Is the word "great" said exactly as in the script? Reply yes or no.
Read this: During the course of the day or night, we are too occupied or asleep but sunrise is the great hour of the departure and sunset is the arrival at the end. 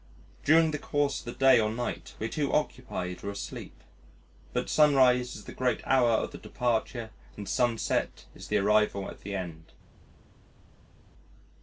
yes